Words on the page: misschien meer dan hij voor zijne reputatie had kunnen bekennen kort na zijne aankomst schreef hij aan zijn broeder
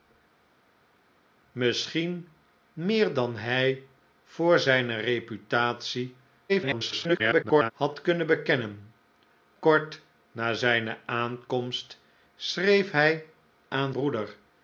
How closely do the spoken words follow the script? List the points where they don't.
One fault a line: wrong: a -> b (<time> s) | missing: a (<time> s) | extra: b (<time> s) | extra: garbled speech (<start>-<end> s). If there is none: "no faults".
extra: garbled speech (6.5-7.7 s)
missing: zijn (13.9 s)